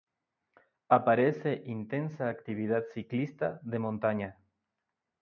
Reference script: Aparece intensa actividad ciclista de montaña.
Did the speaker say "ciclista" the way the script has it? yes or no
yes